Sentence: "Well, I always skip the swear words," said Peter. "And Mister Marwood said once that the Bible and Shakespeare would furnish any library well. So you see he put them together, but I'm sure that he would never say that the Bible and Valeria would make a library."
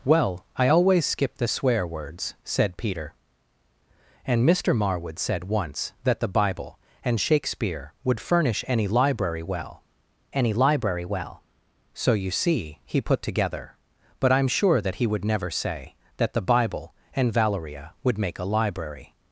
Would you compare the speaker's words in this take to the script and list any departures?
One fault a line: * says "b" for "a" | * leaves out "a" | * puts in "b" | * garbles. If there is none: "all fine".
* puts in "any library well"
* leaves out "them"